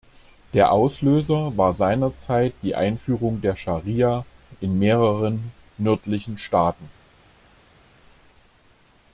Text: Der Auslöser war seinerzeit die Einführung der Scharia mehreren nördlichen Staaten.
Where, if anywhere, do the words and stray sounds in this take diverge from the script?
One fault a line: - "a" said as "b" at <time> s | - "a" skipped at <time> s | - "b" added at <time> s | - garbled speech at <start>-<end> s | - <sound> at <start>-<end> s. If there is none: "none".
- "in" added at 4.6 s